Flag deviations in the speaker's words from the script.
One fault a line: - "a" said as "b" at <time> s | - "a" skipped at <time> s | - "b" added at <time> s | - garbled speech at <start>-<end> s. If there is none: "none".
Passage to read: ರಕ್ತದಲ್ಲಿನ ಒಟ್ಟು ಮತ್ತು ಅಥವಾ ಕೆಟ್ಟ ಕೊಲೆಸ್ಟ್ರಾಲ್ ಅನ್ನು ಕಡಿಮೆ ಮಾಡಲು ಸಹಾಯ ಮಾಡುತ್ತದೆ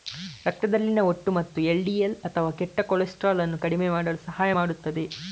- "ಎಲ್.ಡಿ.ಎಲ್" added at 1.6 s